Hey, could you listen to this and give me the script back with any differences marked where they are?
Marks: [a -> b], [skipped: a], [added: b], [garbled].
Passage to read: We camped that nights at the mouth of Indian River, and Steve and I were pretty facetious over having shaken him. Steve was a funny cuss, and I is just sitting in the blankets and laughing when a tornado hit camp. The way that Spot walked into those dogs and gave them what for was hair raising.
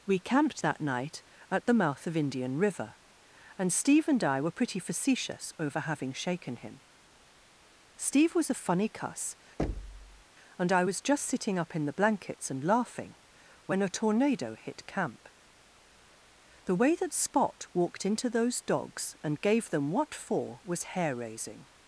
We camped that [nights -> night] at the mouth of Indian River, and Steve and I were pretty facetious over having shaken him. Steve was a funny cuss, and I [is -> was] just sitting [added: up] in the blankets and laughing when a tornado hit camp. The way that Spot walked into those dogs and gave them what for was hair raising.